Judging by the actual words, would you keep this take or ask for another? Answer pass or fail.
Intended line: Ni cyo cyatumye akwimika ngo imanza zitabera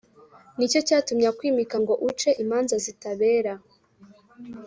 fail